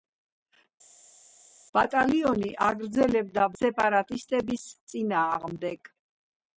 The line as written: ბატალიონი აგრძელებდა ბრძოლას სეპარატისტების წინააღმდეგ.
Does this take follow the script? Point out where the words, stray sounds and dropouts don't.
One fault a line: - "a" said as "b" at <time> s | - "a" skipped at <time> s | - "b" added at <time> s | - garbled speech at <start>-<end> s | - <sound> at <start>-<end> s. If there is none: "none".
- "ბრძოლას" skipped at 3.5 s